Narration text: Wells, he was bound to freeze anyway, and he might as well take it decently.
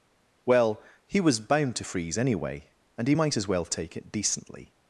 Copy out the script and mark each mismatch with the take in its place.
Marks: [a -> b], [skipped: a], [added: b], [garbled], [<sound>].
[Wells, -> Well] he was bound to freeze anyway, and he might as well take it decently.